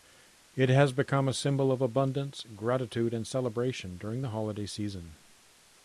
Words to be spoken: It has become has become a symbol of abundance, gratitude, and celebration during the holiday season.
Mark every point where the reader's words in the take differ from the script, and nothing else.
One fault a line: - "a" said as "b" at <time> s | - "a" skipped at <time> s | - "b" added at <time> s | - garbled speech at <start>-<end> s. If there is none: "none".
- "has become" skipped at 1.3 s